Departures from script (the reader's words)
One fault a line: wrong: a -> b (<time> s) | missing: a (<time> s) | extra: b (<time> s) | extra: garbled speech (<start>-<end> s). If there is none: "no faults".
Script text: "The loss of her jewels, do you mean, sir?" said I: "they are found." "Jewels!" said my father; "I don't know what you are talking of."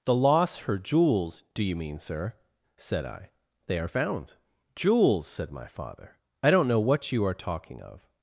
missing: of (0.6 s)